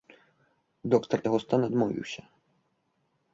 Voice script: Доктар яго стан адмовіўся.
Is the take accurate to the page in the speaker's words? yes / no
yes